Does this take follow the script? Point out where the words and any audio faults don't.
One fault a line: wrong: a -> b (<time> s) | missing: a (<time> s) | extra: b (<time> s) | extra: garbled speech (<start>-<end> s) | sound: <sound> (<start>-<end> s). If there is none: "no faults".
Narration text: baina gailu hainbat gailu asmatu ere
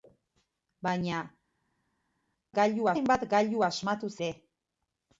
no faults